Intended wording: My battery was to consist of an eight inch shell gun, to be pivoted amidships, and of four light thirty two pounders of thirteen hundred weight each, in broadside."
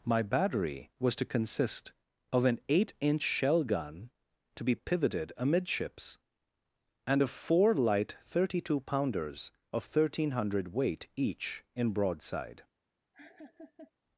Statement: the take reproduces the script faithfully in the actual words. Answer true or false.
true